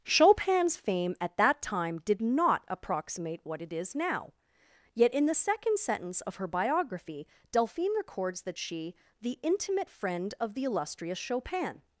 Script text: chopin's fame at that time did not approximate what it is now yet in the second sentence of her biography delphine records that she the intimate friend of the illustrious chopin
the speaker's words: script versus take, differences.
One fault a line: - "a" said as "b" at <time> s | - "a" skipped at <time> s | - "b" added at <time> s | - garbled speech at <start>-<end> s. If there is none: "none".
none